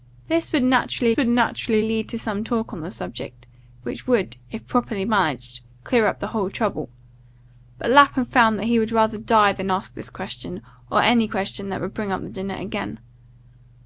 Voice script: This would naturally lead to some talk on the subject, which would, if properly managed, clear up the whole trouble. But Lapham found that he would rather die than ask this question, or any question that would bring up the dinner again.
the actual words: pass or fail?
fail